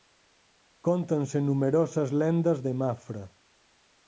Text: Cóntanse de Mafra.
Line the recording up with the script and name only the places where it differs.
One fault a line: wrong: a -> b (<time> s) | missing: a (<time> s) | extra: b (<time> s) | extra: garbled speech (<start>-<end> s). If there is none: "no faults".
extra: numerosas lendas (1.4 s)